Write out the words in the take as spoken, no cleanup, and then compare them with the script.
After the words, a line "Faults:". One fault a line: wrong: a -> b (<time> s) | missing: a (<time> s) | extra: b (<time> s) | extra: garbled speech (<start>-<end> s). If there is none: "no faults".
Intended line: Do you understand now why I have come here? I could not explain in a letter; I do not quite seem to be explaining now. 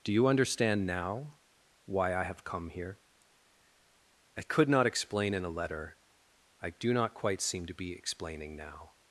Do you understand now why I have come here? I could not explain in a letter; I do not quite seem to be explaining now.
Faults:
no faults